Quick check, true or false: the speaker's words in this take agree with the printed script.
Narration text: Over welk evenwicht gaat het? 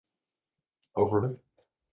false